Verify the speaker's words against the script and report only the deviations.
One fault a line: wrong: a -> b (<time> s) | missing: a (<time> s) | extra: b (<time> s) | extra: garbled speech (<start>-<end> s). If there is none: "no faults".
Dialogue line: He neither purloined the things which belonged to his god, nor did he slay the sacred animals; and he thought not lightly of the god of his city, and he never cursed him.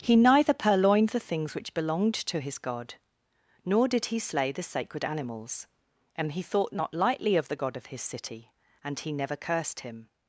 no faults